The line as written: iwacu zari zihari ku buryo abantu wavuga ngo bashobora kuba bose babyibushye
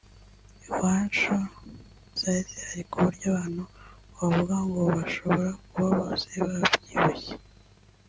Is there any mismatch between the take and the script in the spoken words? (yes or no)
no